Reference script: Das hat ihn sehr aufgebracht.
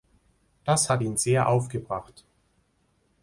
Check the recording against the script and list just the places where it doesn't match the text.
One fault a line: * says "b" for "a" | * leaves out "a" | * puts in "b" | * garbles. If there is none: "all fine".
all fine